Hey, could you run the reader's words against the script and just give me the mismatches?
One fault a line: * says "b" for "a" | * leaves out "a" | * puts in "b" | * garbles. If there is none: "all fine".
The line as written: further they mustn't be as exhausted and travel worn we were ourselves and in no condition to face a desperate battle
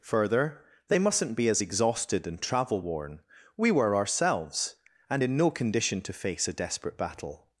all fine